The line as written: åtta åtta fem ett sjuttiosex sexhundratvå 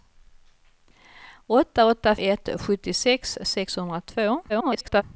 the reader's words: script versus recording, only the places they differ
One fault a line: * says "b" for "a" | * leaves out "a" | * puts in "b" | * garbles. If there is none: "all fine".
* leaves out "fem"
* garbles